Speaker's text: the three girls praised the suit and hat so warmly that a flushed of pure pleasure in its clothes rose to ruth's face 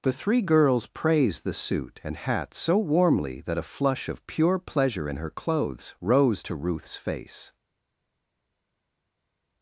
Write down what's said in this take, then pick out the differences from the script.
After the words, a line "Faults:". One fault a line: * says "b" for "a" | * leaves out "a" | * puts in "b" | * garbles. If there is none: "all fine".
the three girls praised the suit and hat so warmly that a flush of pure pleasure in her clothes rose to ruth's face
Faults:
* says "flush" for "flushed"
* says "her" for "its"